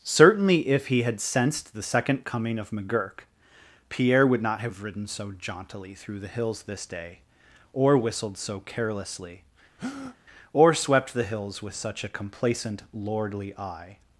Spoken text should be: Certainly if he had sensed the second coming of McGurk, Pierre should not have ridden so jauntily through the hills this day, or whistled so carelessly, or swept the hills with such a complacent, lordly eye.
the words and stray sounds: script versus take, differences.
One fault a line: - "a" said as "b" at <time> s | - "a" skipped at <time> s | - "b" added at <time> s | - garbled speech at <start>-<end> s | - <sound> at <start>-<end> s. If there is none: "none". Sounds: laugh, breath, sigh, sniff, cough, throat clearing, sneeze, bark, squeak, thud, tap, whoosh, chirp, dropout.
- "should" said as "would" at 4.2 s
- breath at 9.8-10.2 s